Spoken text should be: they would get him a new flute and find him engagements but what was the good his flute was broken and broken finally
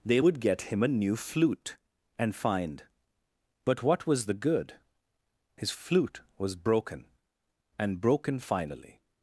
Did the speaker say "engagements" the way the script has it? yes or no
no